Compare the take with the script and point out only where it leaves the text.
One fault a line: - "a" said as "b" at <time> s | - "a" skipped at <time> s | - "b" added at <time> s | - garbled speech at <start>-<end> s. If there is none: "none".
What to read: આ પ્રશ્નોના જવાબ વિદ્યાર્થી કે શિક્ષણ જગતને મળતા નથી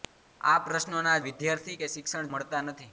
- "જવાબ" skipped at 1.2 s
- "જગતને" skipped at 2.3 s